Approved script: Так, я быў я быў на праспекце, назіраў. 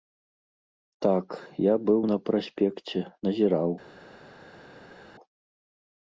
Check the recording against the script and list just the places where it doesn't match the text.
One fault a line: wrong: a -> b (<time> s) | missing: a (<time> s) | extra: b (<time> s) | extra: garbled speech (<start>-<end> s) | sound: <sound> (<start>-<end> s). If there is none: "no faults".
missing: я быў (2.0 s)